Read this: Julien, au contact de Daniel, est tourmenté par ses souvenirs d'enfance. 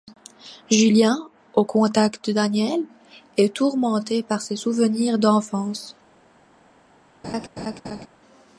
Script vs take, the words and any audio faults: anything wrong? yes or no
yes